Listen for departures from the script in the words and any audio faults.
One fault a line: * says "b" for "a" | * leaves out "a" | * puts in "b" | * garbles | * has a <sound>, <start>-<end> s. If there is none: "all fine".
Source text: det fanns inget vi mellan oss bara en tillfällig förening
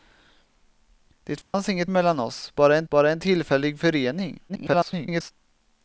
* has a dropout, 1.4-1.5 s
* leaves out "vi"
* puts in "bara en"
* garbles